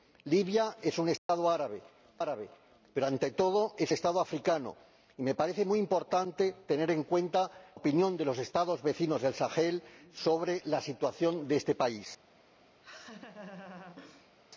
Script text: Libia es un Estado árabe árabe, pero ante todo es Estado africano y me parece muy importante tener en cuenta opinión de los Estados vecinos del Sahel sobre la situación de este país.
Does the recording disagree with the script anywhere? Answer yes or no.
no